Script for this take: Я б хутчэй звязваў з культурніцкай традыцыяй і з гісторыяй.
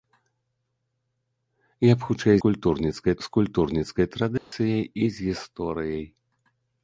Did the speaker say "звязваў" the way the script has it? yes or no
no